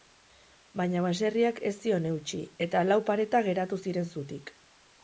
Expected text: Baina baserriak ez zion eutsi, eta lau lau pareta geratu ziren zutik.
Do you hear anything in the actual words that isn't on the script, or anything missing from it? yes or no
yes